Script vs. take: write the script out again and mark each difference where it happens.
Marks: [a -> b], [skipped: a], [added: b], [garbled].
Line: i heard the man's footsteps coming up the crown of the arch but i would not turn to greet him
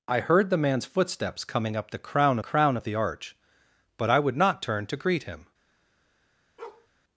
i heard the man's footsteps coming up the crown [added: crown] of the arch but i would not turn to greet him